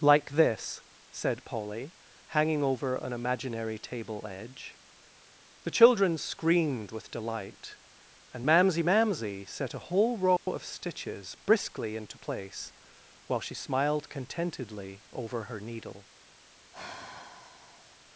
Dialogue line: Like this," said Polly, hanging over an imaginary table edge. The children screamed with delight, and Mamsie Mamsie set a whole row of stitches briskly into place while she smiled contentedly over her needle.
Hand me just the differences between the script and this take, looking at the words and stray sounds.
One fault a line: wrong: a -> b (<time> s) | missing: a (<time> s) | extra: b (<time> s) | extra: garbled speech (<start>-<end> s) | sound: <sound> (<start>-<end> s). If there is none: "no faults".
sound: dropout (10.4-10.5 s)
sound: sigh (16.7-18.0 s)